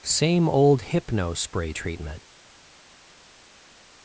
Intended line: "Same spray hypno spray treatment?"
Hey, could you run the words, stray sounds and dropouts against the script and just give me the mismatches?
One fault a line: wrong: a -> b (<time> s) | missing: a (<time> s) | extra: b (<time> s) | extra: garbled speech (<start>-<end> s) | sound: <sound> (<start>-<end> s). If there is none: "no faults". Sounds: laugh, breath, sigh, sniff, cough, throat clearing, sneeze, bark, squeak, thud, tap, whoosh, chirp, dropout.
wrong: spray -> old (0.5 s)